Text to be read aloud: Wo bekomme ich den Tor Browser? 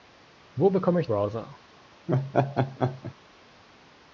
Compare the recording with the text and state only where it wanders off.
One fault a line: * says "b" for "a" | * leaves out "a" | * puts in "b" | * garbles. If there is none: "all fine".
* leaves out "den Tor"